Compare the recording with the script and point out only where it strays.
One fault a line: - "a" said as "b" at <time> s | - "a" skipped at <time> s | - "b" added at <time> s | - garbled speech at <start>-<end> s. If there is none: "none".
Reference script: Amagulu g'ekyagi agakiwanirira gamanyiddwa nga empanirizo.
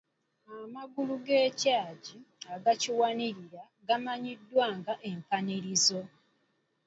none